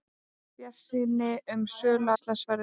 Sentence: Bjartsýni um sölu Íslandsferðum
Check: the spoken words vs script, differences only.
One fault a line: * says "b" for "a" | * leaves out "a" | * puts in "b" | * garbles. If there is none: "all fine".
all fine